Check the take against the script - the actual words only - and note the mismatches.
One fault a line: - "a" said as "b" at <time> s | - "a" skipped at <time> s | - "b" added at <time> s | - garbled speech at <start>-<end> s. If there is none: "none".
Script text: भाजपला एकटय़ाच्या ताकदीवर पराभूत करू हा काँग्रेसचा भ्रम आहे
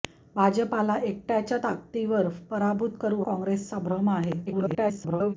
- "हा" skipped at 3.2 s
- garbled speech at 4.5-5.3 s